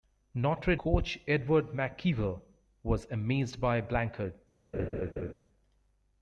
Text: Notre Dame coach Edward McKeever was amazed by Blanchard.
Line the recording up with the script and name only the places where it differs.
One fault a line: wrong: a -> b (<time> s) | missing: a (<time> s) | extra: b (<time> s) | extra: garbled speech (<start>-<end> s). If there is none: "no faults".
missing: Dame (0.8 s)